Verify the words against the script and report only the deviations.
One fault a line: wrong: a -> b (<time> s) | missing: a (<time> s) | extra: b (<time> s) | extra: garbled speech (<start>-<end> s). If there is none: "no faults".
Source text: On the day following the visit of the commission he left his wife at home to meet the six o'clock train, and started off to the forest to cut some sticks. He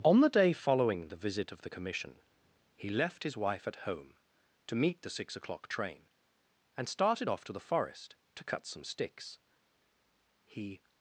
no faults